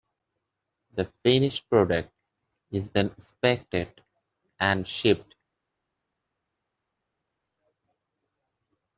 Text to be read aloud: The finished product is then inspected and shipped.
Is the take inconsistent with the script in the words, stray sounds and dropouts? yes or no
no